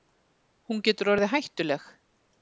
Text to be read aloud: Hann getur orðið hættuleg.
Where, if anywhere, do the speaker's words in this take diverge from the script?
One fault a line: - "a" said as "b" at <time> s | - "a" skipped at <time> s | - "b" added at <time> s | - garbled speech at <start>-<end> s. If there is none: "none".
- "Hann" said as "Hún" at 0.7 s